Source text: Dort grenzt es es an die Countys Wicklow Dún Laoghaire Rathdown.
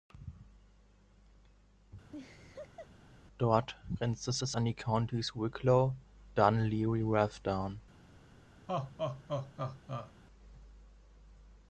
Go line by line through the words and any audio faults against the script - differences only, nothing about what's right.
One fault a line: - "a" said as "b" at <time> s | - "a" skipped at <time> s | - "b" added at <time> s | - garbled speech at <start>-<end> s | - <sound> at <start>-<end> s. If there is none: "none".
- laugh at 2.1-2.9 s
- laugh at 8.7-10.1 s